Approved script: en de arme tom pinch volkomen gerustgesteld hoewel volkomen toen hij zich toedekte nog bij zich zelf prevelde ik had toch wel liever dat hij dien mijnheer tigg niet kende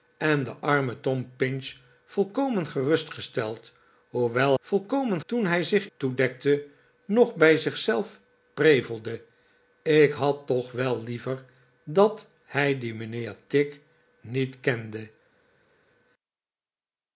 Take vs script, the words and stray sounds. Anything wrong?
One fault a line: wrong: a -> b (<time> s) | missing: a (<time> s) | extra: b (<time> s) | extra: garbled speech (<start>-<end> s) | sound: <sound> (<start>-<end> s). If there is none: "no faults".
no faults